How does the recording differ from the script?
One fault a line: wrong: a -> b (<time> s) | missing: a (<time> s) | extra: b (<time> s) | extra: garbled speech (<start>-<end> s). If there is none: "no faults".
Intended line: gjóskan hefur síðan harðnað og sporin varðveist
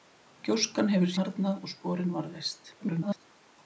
missing: síðan (1.1 s)
extra: garbled speech (2.8-3.3 s)